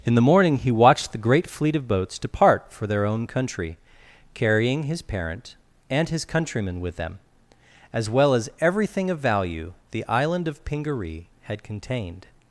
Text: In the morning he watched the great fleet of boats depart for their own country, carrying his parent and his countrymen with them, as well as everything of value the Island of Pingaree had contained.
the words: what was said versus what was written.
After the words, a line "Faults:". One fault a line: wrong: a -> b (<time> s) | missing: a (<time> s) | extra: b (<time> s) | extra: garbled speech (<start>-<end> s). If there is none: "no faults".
In the morning he watched the great fleet of boats depart for their own country, carrying his parent and his countrymen with them, as well as everything of value the Island of Pingaree had contained.
Faults:
no faults